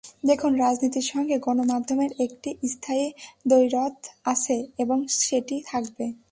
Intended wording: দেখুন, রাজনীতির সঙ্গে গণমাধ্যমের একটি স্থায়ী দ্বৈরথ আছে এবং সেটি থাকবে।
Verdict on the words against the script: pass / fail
pass